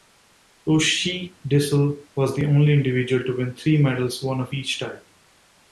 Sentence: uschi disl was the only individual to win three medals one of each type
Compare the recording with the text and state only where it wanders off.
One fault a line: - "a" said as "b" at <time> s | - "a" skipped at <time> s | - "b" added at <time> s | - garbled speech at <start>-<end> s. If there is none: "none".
none